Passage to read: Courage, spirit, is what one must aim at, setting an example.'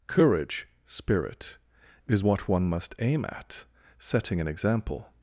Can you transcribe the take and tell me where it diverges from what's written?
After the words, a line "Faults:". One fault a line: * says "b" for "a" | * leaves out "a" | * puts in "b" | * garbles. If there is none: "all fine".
Courage, spirit, is what one must aim at, setting an example.'
Faults:
all fine